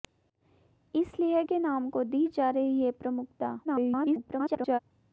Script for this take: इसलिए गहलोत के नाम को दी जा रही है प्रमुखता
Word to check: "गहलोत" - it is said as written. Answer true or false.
false